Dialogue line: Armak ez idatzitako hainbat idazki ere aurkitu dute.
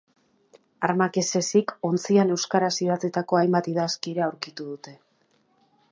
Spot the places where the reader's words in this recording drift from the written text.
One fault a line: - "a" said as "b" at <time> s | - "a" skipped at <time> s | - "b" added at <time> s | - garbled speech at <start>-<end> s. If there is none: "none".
- "ezik ontzian euskaraz" added at 1.4 s